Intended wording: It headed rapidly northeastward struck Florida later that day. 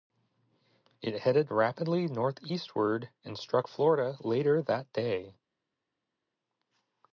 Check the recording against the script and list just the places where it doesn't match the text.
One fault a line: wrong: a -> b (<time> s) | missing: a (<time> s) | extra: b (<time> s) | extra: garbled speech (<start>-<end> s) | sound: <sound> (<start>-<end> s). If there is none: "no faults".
extra: and (3.3 s)